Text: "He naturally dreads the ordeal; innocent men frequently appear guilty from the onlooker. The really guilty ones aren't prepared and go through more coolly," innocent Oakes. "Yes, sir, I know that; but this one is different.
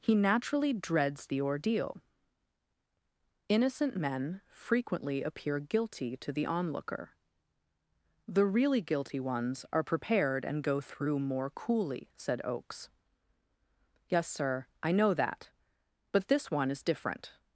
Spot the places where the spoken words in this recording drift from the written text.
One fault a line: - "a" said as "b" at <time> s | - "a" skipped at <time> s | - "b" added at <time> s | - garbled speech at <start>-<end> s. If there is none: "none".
- "from" said as "to" at 6.2 s
- "aren't" said as "are" at 9.7 s
- "innocent" said as "said" at 12.2 s